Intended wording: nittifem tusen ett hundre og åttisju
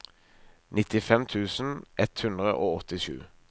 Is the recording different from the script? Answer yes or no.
no